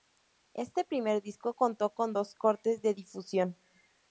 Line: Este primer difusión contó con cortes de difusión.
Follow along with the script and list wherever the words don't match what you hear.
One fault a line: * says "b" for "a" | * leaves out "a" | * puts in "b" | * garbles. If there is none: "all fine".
* says "disco" for "difusión"
* puts in "dos"